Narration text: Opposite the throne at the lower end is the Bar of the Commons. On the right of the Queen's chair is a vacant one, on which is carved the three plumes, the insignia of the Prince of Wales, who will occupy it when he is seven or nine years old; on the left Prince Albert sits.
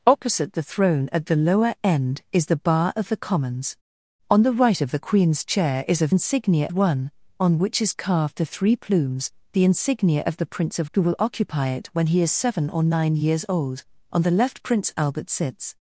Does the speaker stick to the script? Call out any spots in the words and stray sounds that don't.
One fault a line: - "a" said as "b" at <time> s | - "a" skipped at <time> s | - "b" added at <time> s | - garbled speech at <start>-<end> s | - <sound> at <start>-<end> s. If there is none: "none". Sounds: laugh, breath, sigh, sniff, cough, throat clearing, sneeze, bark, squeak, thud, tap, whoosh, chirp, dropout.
- "vacant" said as "insignia" at 6.1 s
- "Wales" skipped at 10.9 s